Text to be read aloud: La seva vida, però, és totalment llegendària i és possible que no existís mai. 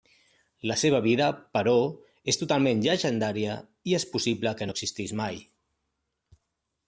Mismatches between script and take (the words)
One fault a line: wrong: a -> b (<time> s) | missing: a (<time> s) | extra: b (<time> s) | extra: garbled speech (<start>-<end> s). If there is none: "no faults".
no faults